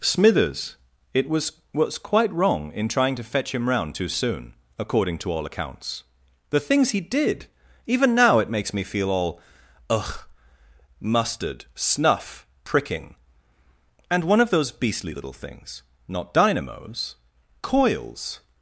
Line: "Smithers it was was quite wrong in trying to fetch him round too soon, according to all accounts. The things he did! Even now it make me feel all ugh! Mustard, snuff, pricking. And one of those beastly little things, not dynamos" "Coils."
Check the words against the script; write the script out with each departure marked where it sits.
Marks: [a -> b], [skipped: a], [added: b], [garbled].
"Smithers it was was quite wrong in trying to fetch him round too soon, according to all accounts. The things he did! Even now it [make -> makes] me feel all ugh! Mustard, snuff, pricking. And one of those beastly little things, not dynamos" "Coils."